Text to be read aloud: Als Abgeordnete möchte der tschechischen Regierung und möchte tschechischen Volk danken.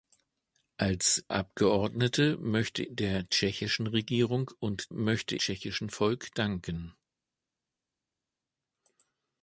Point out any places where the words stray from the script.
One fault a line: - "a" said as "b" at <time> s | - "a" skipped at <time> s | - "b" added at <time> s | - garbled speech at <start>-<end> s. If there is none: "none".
none